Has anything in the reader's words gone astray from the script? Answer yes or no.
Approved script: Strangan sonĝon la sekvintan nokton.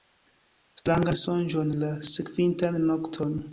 no